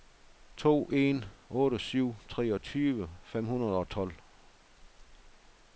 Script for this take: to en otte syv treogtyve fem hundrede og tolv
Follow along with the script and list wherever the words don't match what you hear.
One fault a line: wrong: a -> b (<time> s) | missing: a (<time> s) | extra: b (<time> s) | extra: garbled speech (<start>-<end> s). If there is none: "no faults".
no faults